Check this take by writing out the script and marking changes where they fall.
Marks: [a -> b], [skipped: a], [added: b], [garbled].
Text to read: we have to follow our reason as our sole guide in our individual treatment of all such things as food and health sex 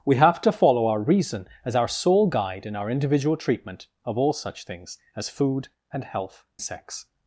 we have to follow our reason as our sole guide in our individual treatment of all such things as food and health sex